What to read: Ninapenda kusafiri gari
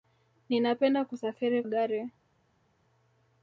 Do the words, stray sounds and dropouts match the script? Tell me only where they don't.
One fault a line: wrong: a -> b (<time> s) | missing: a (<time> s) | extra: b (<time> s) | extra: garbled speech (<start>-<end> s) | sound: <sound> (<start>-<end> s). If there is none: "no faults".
no faults